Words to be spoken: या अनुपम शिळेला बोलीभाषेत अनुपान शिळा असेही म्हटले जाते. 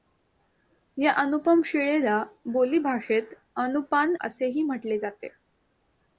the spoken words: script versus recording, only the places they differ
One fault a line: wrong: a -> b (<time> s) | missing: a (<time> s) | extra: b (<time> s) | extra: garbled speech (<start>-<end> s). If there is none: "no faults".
missing: शिळा (4.2 s)